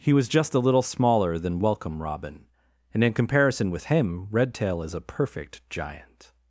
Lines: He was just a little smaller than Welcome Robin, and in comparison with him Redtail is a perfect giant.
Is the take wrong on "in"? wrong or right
right